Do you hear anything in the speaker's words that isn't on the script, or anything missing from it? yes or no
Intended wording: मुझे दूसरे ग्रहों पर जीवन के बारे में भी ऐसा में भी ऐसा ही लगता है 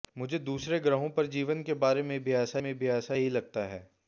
no